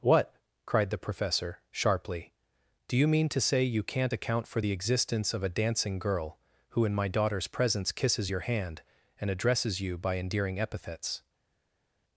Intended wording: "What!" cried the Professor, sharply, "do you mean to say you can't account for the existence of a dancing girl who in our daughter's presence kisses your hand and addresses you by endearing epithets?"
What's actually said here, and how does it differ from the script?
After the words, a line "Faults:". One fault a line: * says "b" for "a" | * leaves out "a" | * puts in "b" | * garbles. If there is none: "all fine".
"What!" cried the Professor, sharply, "do you mean to say you can't account for the existence of a dancing girl who in my daughter's presence kisses your hand and addresses you by endearing epithets?"
Faults:
* says "my" for "our"